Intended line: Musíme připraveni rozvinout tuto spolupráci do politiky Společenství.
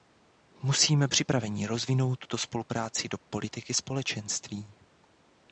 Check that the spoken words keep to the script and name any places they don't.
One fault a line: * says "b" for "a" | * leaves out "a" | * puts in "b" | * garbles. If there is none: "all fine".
all fine